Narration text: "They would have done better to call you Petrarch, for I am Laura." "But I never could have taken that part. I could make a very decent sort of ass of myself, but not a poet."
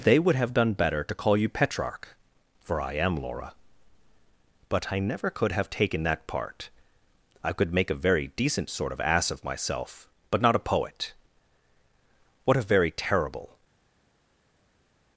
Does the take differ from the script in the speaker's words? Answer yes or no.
yes